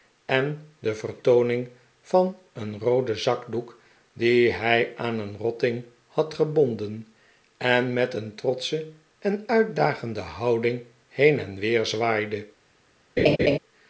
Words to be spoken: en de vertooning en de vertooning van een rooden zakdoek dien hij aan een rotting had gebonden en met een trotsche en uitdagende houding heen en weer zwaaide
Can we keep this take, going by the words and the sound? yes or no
no